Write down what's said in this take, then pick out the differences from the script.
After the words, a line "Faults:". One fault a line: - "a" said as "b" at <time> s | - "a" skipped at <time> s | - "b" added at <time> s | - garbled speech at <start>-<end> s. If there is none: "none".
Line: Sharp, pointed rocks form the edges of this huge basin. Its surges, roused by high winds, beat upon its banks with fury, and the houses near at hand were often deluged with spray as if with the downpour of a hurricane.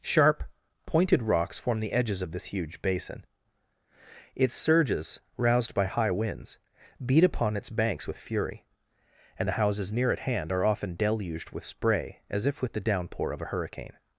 Sharp, pointed rocks form the edges of this huge basin. Its surges, roused by high winds, beat upon its banks with fury, and the houses near at hand are often deluged with spray as if with the downpour of a hurricane.
Faults:
- "were" said as "are" at 10.5 s